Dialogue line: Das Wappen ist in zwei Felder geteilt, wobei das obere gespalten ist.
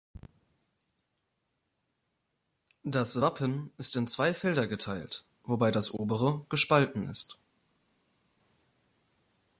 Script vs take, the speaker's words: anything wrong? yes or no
no